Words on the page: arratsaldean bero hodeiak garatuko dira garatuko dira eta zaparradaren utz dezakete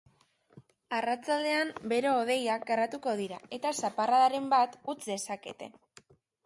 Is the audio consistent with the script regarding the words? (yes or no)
no